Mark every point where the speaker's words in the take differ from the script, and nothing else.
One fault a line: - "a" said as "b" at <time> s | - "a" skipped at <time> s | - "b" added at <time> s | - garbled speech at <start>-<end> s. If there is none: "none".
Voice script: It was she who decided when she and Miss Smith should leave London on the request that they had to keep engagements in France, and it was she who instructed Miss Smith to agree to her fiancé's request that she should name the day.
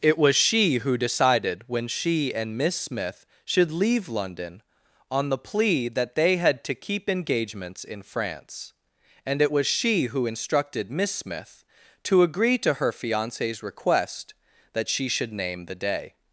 - "request" said as "plea" at 5.4 s